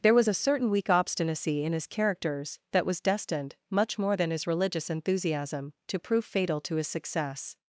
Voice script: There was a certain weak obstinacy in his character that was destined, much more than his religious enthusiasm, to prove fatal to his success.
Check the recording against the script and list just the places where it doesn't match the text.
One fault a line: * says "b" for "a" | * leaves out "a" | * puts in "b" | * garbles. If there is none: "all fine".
* says "characters" for "character"